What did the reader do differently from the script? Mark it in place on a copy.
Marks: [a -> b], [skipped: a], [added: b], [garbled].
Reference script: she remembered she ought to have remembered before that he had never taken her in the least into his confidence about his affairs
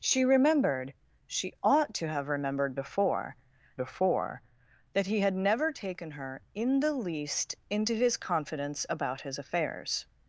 she remembered she ought to have remembered before [added: before] that he had never taken her in the least into his confidence about his affairs